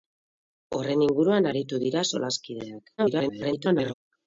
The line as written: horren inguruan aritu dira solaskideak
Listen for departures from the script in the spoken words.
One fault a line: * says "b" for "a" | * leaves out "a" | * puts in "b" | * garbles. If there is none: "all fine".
* garbles